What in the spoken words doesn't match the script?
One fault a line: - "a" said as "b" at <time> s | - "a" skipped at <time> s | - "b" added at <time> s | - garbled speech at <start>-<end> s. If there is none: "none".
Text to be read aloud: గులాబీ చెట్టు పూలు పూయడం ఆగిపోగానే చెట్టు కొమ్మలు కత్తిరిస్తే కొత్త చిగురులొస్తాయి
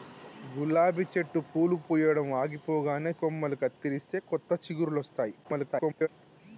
- "చెట్టు" skipped at 3.1 s
- garbled speech at 5.4-6.1 s